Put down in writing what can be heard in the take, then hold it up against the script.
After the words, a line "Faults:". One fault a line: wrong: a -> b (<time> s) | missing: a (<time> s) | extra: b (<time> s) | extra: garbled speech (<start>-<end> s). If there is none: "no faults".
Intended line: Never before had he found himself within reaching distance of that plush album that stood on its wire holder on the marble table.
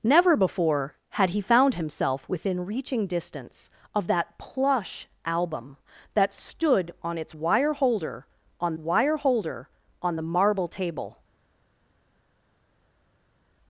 Never before had he found himself within reaching distance of that plush album that stood on its wire holder on wire holder on the marble table.
Faults:
extra: wire holder on (8.8 s)